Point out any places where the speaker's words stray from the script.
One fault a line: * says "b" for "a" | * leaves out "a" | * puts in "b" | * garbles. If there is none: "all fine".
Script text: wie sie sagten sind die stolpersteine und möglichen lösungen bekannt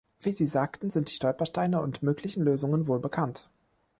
* puts in "wohl"